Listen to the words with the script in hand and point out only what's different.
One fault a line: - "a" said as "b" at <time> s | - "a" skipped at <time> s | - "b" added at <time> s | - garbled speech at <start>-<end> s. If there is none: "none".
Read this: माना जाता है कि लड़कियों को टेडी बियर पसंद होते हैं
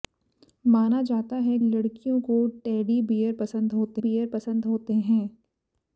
- "कि" skipped at 1.6 s
- "बियर पसंद होते" added at 4.0 s